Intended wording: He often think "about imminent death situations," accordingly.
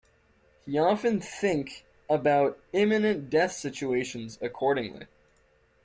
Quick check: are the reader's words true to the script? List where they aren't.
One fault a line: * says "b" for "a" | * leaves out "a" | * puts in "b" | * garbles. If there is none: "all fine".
all fine